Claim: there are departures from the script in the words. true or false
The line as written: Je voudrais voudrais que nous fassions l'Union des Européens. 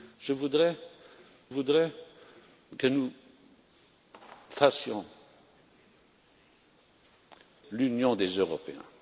false